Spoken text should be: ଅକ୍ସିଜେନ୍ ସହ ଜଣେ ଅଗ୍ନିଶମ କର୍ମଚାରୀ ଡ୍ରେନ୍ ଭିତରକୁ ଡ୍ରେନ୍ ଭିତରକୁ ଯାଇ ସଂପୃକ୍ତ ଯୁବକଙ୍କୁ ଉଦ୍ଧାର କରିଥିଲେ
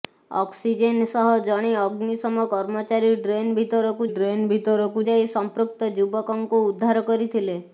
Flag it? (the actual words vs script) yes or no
no